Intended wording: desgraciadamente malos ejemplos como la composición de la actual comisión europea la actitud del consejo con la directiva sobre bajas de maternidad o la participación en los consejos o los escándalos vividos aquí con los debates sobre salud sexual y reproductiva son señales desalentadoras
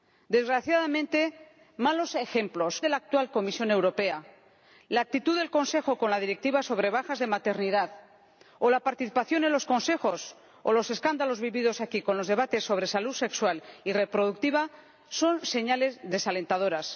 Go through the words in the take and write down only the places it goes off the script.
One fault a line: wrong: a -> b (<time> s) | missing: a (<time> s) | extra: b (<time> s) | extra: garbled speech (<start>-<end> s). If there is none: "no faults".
missing: como la composición (2.8 s)